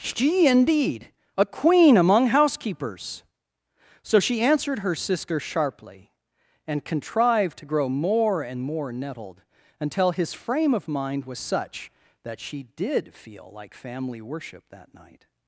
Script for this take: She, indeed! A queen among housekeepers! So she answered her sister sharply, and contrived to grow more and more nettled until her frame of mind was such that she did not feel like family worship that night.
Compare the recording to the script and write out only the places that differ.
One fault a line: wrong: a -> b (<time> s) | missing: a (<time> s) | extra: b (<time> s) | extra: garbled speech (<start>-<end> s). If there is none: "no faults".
wrong: her -> his (10.1 s)
missing: not (13.1 s)